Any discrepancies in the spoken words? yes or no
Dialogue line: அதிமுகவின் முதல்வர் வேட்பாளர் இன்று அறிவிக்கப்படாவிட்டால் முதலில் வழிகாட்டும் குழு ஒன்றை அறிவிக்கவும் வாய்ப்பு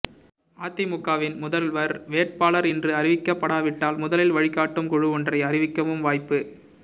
no